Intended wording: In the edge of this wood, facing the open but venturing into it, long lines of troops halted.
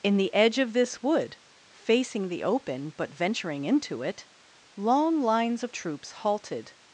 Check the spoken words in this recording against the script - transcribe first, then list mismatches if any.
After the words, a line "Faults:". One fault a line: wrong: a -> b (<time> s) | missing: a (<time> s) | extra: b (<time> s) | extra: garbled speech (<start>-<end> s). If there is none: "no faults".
In the edge of this wood, facing the open but venturing into it, long lines of troops halted.
Faults:
no faults